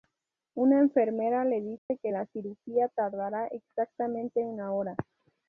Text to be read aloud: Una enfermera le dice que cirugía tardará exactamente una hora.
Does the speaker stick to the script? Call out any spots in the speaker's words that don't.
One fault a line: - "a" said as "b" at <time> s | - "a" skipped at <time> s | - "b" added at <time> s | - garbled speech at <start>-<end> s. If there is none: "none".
- "la" added at 2.1 s